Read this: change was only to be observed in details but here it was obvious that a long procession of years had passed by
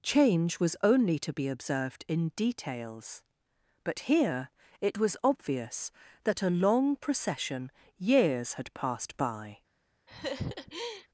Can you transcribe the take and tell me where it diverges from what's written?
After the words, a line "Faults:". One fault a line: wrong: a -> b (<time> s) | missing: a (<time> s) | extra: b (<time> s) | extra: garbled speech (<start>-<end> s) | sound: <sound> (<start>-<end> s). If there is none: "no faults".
change was only to be observed in details but here it was obvious that a long procession years had passed by
Faults:
missing: of (7.7 s)
sound: laugh (10.1-11.1 s)